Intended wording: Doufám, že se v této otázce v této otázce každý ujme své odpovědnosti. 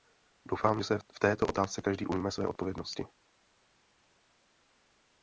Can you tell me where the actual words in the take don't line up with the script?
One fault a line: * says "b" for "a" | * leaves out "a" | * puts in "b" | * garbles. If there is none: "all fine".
* leaves out "v této otázce"